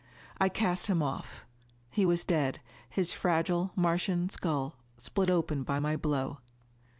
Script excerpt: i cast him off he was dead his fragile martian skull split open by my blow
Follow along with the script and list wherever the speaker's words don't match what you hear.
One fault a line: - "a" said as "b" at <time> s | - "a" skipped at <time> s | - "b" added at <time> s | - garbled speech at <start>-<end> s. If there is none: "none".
none